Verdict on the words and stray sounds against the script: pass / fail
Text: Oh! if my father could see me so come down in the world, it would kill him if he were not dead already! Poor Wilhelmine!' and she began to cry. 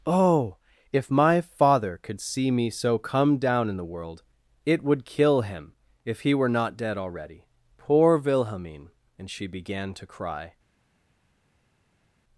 pass